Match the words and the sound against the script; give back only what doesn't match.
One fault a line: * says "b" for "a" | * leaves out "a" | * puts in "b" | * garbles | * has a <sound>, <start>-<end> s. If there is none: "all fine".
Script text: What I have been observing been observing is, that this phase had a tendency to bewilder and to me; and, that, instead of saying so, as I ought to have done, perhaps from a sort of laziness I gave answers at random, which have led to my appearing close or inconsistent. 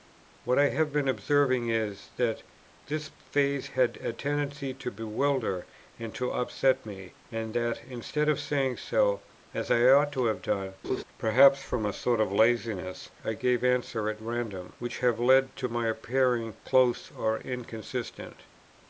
* leaves out "been observing"
* puts in "upset"
* has a laugh, 10.8-11.0 s